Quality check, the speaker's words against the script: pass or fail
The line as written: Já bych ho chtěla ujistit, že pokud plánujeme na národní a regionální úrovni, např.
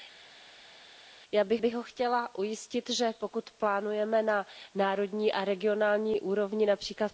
fail